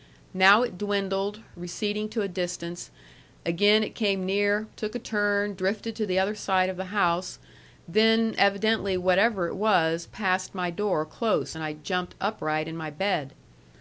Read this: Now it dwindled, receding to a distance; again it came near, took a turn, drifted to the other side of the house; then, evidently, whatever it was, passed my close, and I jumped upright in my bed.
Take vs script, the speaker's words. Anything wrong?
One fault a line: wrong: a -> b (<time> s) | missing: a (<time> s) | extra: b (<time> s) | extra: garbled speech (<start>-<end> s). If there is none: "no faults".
extra: door (10.7 s)